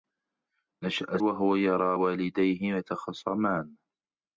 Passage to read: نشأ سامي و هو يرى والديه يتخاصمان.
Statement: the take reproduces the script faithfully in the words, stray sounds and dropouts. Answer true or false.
false